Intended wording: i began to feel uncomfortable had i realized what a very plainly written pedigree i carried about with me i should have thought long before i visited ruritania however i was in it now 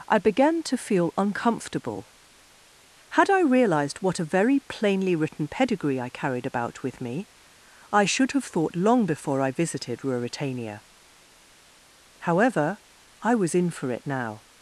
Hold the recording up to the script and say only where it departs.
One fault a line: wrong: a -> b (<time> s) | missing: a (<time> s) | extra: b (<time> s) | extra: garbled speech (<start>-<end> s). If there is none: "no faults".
extra: for (13.7 s)